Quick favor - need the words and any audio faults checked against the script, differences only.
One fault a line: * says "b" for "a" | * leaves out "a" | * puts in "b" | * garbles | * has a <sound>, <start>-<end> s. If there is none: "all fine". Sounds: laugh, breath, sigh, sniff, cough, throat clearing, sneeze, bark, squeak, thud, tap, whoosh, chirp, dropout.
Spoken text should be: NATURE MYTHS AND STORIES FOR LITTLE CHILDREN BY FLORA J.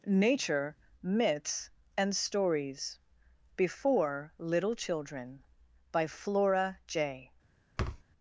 * says "Before" for "FOR"
* has a thud, 7.8-8.0 s